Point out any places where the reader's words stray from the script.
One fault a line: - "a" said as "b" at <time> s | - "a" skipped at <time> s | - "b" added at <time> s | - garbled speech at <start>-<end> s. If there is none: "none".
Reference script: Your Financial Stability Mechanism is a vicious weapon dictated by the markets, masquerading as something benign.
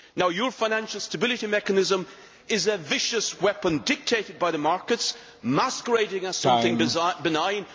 none